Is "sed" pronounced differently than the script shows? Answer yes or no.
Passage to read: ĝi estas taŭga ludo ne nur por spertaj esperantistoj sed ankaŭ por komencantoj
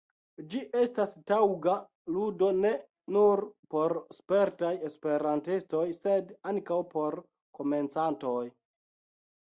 no